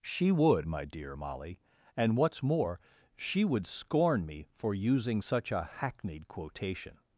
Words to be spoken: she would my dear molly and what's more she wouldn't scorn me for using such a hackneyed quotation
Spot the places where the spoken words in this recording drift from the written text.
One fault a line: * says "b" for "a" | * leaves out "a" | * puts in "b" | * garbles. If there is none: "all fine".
* says "would" for "wouldn't"